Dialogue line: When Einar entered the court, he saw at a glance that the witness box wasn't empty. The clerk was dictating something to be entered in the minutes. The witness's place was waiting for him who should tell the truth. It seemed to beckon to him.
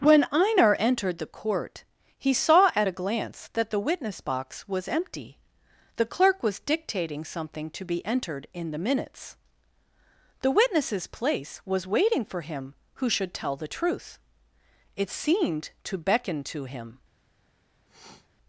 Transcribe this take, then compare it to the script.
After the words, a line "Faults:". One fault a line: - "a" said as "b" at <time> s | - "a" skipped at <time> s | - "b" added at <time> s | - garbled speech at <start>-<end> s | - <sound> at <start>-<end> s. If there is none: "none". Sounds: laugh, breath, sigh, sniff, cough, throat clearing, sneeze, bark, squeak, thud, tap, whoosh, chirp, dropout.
When Einar entered the court, he saw at a glance that the witness box was empty. The clerk was dictating something to be entered in the minutes. The witness's place was waiting for him who should tell the truth. It seemed to beckon to him.
Faults:
- "wasn't" said as "was" at 4.7 s
- sniff at 17.9-18.3 s